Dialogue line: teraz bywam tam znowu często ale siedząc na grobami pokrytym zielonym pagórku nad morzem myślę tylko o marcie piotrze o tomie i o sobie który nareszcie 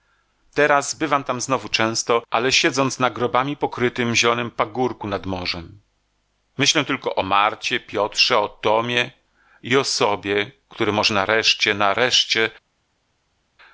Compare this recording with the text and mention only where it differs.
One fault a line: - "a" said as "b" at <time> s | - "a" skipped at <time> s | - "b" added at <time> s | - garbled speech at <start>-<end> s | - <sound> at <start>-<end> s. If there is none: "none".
- "może nareszcie" added at 10.9 s